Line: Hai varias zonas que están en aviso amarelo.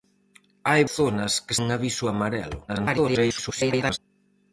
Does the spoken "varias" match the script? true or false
false